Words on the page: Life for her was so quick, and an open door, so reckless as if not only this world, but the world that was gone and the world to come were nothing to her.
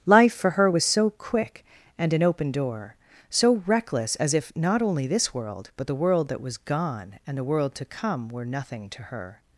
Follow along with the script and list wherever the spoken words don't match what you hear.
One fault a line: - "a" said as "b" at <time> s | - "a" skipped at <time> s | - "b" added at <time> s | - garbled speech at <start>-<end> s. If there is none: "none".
none